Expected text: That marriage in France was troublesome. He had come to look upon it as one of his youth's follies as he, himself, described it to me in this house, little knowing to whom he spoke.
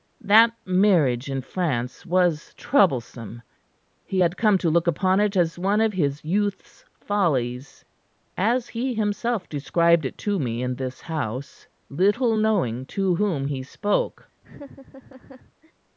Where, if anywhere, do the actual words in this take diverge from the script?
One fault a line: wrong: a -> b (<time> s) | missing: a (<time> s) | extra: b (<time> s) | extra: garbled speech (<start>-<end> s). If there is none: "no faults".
no faults